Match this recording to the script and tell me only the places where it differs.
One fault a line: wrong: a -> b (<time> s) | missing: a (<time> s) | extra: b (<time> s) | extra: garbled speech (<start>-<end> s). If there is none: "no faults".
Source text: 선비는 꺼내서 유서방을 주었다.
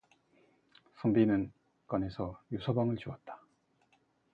no faults